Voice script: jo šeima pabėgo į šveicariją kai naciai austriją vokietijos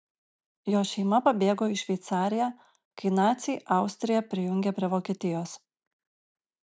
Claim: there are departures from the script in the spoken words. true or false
true